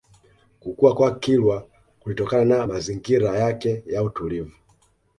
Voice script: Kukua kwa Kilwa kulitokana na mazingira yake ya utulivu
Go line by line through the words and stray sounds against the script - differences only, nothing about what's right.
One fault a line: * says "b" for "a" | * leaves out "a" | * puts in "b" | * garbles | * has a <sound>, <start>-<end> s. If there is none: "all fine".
all fine